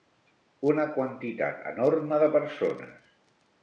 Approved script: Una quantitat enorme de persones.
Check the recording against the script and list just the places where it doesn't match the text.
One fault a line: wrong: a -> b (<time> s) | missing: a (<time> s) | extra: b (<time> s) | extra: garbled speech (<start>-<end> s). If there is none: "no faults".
no faults